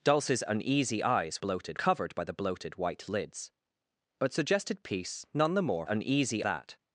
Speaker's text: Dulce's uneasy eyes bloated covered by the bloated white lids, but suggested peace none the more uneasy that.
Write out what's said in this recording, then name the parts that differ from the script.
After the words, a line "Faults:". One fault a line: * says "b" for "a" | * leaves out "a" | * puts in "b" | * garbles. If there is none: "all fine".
Dulce's uneasy eyes bloated covered by the bloated white lids, but suggested peace none the more uneasy that.
Faults:
all fine